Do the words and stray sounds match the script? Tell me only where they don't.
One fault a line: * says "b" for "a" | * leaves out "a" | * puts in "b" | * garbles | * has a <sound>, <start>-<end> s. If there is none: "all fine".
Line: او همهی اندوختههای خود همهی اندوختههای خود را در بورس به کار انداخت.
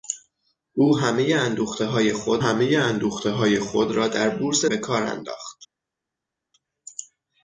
all fine